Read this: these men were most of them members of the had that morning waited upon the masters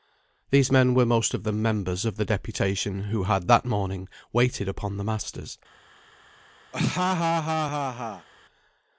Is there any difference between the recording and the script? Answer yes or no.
yes